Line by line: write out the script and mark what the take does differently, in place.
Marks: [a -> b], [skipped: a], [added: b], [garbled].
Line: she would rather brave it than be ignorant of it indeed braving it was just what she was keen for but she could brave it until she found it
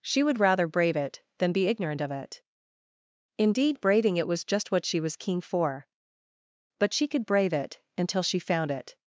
she would rather brave it than be ignorant of it indeed braving it was just what she was keen for but she could brave it until she found it